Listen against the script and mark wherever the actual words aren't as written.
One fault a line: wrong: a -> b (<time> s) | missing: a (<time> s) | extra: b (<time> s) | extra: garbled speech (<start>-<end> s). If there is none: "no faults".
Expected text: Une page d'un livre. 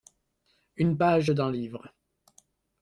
no faults